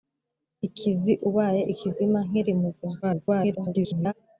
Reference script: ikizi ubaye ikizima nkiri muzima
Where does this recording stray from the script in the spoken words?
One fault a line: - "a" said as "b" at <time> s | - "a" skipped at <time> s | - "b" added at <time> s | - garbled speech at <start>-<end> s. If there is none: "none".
- garbled speech at 3.0-4.1 s